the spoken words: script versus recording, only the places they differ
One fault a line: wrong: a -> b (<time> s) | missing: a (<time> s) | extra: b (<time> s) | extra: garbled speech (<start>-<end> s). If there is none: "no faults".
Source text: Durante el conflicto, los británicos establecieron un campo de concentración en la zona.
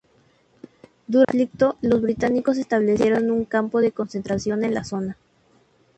no faults